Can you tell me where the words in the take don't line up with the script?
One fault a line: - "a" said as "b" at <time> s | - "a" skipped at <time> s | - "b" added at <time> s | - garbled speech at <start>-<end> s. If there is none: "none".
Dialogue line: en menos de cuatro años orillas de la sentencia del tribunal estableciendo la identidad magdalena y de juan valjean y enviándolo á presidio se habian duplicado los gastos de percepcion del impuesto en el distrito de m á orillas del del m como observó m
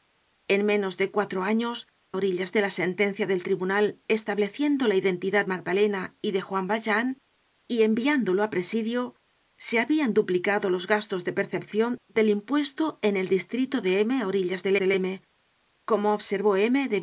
none